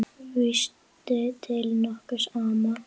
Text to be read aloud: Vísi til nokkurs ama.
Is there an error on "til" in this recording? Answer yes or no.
no